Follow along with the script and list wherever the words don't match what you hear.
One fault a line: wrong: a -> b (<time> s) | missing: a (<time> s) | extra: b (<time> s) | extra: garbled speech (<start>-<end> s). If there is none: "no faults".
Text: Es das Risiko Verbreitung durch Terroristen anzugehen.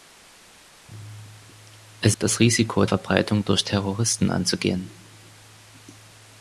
no faults